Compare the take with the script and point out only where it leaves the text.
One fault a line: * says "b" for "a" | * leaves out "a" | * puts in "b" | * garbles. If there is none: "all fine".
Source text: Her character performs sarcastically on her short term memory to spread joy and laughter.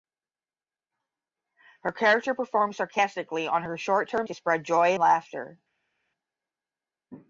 * leaves out "memory"
* leaves out "and"